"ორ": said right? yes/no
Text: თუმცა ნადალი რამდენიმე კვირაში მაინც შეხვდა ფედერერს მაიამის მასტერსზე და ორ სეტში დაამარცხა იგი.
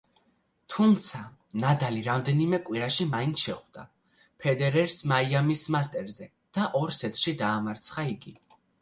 yes